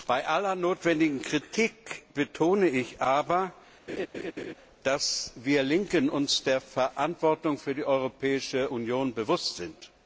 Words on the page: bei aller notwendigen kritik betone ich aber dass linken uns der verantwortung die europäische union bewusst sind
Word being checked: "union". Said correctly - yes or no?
yes